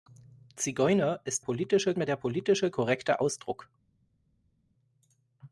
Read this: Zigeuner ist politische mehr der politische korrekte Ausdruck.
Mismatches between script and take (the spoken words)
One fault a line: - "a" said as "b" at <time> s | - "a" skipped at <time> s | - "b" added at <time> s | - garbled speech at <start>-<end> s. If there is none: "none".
none